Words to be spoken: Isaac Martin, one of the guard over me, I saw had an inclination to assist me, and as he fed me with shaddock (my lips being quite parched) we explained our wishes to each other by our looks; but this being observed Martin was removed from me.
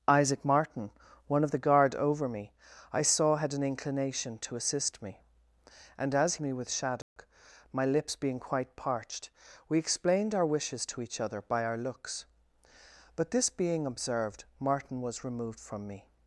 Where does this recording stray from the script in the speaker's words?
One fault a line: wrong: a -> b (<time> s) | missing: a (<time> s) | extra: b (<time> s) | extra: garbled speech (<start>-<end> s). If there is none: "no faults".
missing: he fed (6.3 s)